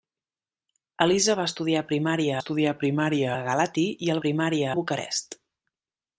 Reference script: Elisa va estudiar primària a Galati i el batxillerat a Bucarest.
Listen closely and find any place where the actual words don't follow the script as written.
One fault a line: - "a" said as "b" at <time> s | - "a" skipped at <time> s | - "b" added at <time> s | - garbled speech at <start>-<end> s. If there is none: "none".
- "estudiar primària" added at 2.4 s
- "batxillerat" said as "primària" at 4.2 s